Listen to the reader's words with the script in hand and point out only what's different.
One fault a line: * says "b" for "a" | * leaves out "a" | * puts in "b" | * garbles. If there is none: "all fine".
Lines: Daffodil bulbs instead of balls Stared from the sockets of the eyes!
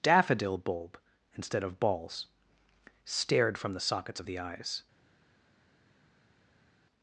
* says "bulb" for "bulbs"